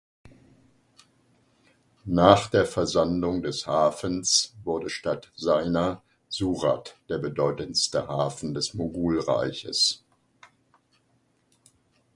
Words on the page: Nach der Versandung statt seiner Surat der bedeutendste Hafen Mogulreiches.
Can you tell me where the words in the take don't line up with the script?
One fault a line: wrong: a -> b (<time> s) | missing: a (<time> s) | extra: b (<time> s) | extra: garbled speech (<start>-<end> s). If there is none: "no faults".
extra: des Hafens wurde (3.4 s)
extra: des (8.5 s)